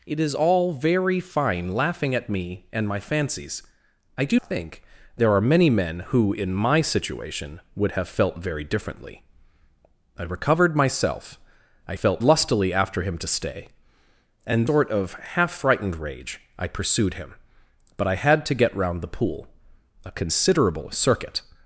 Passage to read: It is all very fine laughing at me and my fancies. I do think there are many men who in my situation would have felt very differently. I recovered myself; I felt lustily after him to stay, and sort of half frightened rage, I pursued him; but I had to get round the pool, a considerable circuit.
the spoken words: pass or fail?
pass